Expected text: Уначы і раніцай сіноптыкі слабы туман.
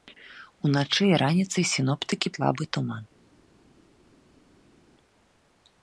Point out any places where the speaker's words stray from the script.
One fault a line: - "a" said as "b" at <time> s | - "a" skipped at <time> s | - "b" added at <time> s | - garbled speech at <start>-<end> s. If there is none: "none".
none